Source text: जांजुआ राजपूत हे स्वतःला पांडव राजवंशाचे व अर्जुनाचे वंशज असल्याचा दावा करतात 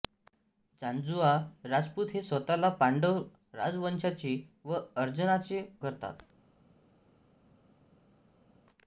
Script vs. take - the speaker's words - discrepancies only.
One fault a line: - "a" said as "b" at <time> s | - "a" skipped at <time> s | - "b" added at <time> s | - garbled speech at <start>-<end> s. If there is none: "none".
- "वंशज असल्याचा दावा" skipped at 5.6 s